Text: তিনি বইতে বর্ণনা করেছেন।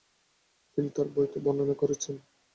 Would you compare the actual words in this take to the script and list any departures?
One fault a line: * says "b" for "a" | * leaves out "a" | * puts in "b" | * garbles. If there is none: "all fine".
* puts in "তার"